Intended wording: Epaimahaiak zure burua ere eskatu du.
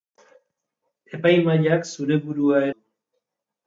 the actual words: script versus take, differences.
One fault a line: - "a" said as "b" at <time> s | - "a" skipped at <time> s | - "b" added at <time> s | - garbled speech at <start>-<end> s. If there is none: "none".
- "ere eskatu" skipped at 2.7 s